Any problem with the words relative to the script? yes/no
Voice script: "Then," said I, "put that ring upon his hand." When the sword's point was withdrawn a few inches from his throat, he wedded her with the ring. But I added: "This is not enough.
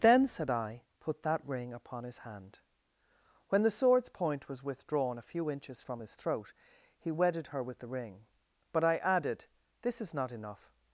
no